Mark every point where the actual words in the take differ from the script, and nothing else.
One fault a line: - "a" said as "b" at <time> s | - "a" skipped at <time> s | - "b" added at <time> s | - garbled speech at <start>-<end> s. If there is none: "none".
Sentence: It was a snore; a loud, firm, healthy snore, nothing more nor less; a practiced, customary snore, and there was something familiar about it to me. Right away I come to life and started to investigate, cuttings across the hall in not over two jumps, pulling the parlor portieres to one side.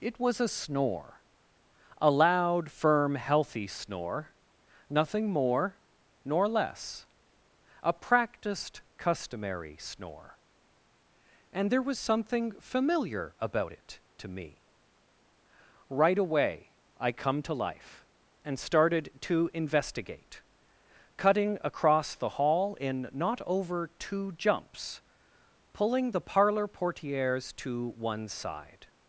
- "cuttings" said as "cutting" at 21.2 s